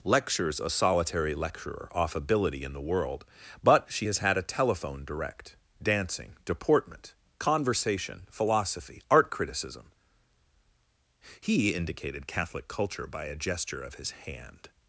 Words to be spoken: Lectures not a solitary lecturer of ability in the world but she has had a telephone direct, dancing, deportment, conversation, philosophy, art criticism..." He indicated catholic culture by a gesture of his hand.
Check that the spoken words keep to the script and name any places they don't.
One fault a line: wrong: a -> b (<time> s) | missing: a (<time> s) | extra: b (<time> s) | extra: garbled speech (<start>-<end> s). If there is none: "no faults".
missing: not (0.6 s)
wrong: of -> off (1.9 s)